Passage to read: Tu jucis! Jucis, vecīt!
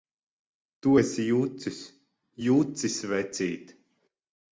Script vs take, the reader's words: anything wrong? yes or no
yes